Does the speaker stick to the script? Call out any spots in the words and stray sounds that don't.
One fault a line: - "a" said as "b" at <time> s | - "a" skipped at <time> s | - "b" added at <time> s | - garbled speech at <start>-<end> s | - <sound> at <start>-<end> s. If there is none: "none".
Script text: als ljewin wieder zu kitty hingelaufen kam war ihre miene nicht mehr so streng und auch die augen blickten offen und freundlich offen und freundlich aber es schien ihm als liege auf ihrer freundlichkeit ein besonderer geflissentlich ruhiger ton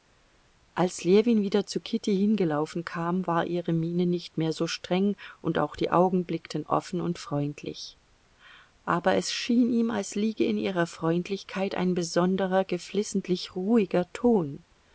- "offen und freundlich" skipped at 8.0 s
- "auf" said as "in" at 10.4 s